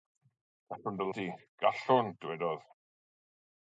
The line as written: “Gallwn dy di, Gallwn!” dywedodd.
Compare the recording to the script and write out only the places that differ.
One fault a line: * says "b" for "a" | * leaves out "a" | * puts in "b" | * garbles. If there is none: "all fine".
all fine